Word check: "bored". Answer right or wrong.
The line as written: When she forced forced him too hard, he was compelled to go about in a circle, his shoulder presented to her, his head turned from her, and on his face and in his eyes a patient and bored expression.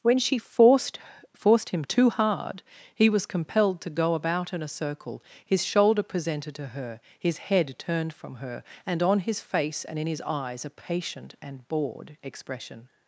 right